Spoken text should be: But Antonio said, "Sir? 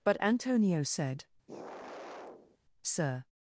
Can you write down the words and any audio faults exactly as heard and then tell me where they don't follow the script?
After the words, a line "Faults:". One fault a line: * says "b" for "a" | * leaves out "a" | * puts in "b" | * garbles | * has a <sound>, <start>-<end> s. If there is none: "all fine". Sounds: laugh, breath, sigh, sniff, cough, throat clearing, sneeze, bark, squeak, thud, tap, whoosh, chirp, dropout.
But Antonio said, "Sir?
Faults:
* has a sigh, 1.5-2.6 s